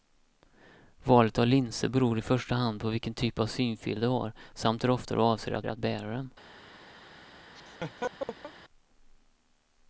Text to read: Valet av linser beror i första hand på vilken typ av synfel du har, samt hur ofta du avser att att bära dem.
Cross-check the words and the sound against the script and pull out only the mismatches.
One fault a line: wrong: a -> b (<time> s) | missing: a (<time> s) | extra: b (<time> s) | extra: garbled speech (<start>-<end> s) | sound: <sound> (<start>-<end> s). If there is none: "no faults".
sound: laugh (7.6-8.5 s)